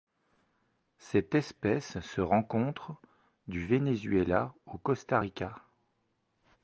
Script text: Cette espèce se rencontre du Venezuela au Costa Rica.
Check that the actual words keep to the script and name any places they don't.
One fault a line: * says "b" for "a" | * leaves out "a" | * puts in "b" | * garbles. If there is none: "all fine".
all fine